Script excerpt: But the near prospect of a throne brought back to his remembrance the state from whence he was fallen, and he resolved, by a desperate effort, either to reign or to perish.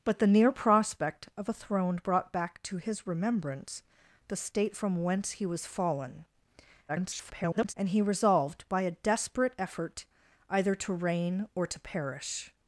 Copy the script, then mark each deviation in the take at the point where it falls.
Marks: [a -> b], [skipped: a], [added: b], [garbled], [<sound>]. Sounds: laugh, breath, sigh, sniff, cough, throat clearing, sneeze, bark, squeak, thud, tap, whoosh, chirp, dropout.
But the near prospect of a throne brought back to his remembrance the state from whence he was fallen, [garbled] and he resolved, by a desperate effort, either to reign or to perish.